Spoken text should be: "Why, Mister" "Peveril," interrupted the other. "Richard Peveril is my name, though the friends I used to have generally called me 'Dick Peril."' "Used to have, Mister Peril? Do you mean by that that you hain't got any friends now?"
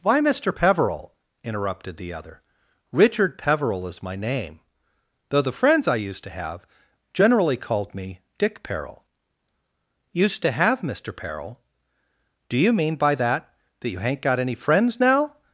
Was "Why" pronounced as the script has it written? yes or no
yes